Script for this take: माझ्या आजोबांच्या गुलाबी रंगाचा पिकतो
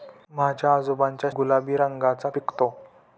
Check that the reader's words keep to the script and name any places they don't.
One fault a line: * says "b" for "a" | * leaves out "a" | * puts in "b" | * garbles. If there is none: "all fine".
all fine